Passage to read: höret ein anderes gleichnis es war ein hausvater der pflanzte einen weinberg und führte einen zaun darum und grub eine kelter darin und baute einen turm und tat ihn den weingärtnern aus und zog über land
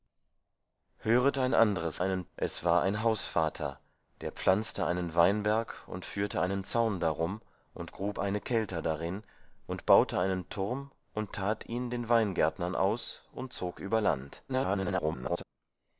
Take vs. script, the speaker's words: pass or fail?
fail